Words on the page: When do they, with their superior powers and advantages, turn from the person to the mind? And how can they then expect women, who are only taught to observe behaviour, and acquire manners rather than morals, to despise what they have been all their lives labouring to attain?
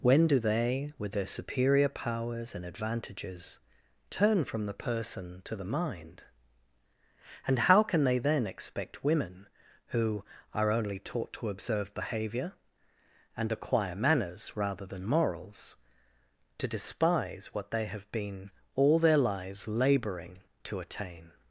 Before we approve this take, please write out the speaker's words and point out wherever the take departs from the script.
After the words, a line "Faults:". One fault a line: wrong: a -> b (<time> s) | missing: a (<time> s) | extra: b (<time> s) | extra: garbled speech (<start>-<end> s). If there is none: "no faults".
When do they, with their superior powers and advantages, turn from the person to the mind? And how can they then expect women, who are only taught to observe behaviour, and acquire manners rather than morals, to despise what they have been all their lives labouring to attain?
Faults:
no faults